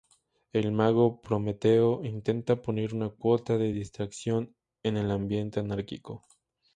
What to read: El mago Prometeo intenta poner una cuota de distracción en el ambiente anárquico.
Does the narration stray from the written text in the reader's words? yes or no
no